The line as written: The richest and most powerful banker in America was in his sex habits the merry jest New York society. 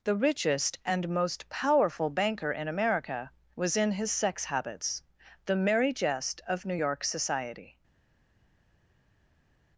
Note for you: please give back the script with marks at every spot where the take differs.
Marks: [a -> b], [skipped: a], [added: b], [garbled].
The richest and most powerful banker in America was in his sex habits the merry jest [added: of] New York society.